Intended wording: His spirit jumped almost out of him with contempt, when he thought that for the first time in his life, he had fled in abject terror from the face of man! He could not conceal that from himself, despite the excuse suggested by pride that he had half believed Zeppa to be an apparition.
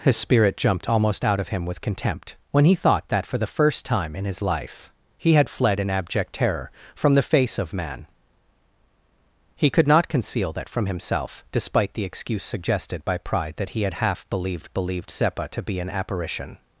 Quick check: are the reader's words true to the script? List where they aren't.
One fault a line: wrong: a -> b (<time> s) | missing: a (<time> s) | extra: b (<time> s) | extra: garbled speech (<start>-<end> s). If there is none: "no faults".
extra: believed (14.7 s)